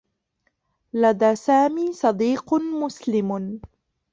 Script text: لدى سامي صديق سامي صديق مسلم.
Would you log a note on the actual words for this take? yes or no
yes